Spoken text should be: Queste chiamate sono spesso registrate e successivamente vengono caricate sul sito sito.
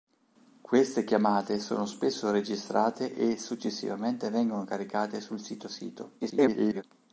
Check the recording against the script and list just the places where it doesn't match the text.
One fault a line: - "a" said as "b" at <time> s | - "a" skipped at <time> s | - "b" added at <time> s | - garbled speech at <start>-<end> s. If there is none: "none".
- garbled speech at 6.2-6.8 s